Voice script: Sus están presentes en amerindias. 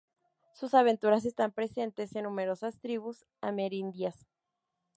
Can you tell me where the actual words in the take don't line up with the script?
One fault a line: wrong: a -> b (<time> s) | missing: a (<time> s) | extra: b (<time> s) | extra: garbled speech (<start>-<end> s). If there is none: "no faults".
extra: aventuras (0.7 s)
extra: numerosas tribus (2.2 s)